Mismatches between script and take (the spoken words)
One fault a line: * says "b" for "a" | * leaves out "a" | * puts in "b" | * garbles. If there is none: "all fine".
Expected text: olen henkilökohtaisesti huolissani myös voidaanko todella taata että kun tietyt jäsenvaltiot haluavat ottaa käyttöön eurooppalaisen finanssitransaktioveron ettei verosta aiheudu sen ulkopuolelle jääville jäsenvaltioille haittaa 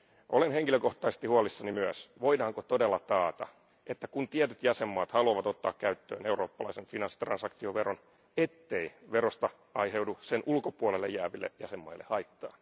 all fine